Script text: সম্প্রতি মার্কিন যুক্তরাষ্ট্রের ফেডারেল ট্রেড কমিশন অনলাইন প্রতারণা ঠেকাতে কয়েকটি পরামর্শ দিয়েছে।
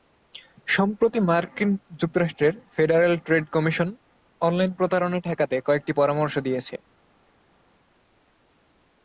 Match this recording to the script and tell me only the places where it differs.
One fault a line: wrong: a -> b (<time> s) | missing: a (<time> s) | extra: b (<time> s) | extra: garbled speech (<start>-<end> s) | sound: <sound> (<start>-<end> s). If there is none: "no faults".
no faults